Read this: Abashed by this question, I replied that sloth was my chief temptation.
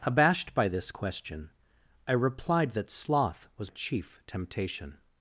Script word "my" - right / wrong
wrong